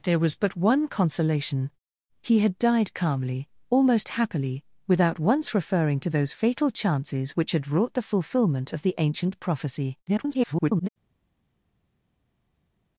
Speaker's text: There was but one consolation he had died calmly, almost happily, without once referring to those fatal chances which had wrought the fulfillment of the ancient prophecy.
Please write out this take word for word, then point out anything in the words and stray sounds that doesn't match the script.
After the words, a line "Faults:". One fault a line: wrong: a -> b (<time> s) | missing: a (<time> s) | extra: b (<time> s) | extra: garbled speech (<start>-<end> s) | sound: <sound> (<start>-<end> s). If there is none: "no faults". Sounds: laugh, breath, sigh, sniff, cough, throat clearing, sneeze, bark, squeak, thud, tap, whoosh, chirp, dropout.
There was but one consolation he had died calmly, almost happily, without once referring to those fatal chances which had wrought the fulfillment of the ancient prophecy. [garbled]
Faults:
extra: garbled speech (10.1-10.9 s)